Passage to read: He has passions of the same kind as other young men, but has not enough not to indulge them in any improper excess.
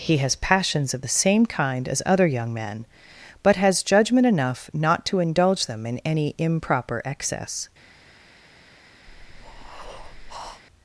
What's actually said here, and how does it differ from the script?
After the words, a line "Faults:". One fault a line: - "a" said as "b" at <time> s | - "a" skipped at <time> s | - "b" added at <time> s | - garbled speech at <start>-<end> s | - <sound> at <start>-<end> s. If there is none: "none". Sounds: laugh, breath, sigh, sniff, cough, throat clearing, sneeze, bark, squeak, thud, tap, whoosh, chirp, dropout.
He has passions of the same kind as other young men, but has judgment enough not to indulge them in any improper excess.
Faults:
- "not" said as "judgment" at 3.8 s
- breath at 9.1-10.6 s